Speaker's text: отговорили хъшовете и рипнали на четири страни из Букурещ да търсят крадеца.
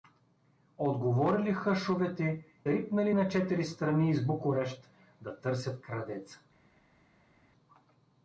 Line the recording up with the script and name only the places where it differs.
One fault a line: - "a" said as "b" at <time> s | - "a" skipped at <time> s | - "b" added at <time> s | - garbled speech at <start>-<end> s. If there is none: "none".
- "и" skipped at 2.5 s